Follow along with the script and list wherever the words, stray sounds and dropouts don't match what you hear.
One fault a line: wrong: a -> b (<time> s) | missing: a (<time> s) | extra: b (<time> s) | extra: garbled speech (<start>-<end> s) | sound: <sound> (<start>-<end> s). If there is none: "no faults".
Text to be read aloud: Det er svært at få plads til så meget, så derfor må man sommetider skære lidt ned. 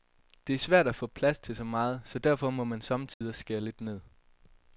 sound: dropout (3.1-3.2 s)